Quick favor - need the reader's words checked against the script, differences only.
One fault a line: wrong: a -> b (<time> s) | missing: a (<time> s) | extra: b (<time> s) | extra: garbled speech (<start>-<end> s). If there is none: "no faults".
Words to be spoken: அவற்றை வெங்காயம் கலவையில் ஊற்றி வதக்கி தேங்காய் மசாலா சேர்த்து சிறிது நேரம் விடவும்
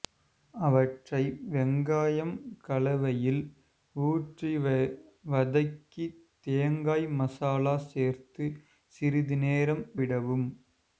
no faults